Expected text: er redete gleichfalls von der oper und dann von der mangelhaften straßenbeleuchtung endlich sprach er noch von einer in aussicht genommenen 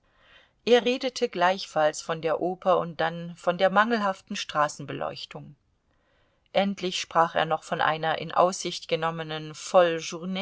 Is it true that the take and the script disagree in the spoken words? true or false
false